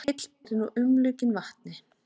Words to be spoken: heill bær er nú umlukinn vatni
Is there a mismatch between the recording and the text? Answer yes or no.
yes